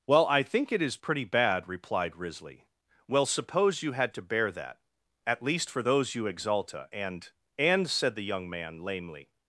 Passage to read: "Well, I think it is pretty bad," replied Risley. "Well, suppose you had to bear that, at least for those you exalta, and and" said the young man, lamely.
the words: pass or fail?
pass